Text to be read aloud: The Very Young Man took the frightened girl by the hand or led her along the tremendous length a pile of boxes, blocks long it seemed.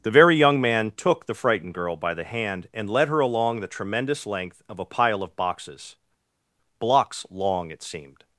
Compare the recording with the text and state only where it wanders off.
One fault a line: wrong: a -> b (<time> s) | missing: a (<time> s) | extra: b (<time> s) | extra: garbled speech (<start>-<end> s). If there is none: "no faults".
wrong: or -> and (2.7 s)
extra: of (4.7 s)